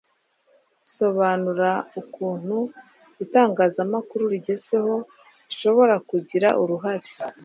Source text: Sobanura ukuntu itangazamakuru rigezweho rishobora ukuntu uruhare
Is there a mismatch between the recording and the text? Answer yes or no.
yes